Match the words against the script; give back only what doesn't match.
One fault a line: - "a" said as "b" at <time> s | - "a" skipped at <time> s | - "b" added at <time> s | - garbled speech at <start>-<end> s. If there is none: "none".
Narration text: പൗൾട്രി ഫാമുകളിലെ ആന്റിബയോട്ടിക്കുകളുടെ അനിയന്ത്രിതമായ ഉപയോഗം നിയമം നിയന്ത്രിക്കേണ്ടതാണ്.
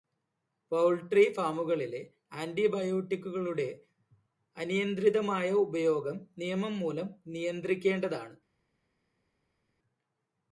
- "മൂലം" added at 6.8 s